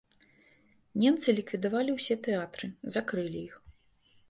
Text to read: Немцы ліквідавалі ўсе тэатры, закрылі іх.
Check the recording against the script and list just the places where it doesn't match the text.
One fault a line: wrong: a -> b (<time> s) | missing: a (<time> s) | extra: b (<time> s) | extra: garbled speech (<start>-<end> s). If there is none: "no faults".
no faults